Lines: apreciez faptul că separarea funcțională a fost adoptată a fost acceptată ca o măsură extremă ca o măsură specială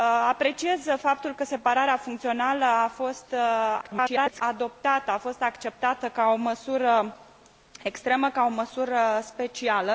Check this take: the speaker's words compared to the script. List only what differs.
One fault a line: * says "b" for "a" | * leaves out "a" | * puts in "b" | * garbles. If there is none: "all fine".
* garbles